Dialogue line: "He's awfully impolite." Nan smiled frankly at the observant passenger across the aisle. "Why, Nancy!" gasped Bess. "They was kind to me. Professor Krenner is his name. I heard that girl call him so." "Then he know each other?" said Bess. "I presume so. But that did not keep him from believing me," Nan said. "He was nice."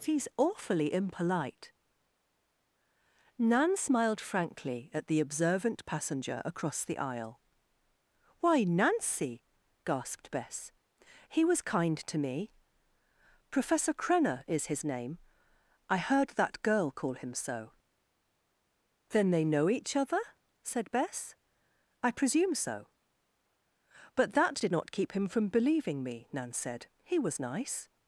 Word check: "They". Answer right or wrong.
wrong